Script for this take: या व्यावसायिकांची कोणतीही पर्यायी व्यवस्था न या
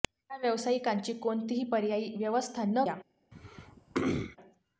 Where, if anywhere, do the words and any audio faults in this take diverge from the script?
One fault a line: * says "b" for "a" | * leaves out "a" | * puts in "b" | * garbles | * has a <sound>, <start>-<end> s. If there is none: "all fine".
* has a throat clearing, 3.3-4.4 s